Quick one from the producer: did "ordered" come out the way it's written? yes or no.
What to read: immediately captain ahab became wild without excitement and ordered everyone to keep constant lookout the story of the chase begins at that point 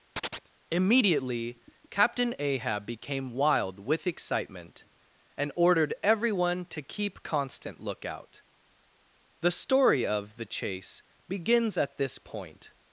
yes